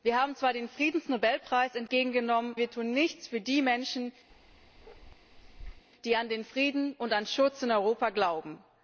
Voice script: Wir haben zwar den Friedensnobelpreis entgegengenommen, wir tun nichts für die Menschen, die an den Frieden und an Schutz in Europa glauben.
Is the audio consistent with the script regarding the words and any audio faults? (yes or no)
no